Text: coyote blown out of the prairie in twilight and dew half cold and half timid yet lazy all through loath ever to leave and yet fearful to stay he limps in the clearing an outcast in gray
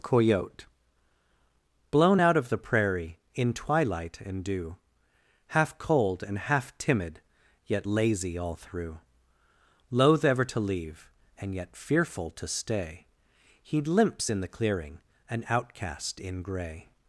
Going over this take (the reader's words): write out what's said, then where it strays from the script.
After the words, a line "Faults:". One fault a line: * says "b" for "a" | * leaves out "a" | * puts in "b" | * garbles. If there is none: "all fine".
coyote blown out of the prairie in twilight and dew half cold and half timid yet lazy all through loath ever to leave and yet fearful to stay he limps in the clearing an outcast in gray
Faults:
all fine